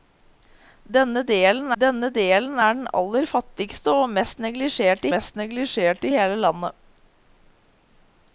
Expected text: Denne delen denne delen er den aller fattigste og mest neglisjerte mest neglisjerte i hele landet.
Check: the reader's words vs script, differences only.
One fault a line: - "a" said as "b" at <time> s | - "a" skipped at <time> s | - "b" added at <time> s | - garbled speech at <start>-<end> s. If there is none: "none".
none